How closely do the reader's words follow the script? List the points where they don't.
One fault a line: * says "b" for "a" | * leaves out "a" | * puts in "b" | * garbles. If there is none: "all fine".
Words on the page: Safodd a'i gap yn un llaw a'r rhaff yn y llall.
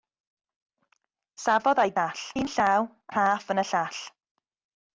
* says "llall" for "gap"
* leaves out "a'r"